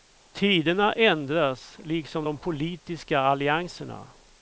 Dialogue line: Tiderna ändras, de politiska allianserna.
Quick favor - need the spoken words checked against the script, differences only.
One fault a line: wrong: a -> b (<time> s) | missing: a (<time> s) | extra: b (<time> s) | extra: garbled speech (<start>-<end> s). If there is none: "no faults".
extra: liksom (1.8 s)